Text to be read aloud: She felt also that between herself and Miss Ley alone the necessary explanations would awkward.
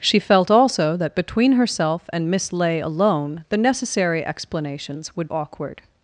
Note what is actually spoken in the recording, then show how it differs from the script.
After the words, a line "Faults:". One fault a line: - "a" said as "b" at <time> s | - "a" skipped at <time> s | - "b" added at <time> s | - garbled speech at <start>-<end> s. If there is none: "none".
She felt also that between herself and Miss Ley alone the necessary explanations would awkward.
Faults:
none